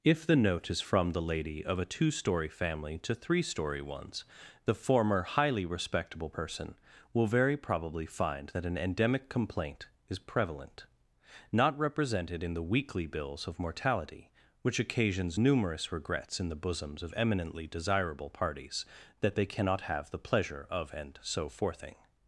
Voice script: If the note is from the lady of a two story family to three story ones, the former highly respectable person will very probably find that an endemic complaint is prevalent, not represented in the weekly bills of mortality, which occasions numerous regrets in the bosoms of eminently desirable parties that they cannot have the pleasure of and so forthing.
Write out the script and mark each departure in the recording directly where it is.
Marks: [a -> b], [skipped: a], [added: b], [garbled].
If the note is from the lady of a two story family to three story ones, the former highly respectable person will very probably find that an endemic complaint is prevalent, not represented in the weekly bills of mortality, which occasions numerous regrets in the bosoms of eminently desirable parties that they cannot have the pleasure of and so forthing.